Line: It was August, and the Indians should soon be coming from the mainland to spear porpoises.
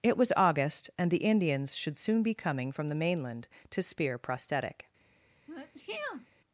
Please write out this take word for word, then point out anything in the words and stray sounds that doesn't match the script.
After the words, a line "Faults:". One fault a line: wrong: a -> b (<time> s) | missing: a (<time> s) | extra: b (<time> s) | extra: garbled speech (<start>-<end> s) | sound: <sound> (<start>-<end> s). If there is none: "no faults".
It was August, and the Indians should soon be coming from the mainland to spear prosthetic.
Faults:
wrong: porpoises -> prosthetic (4.2 s)
sound: sneeze (5.5-6.3 s)